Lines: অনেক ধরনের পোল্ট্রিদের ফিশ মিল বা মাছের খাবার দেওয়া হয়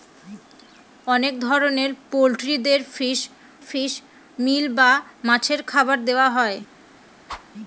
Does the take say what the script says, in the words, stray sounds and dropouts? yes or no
no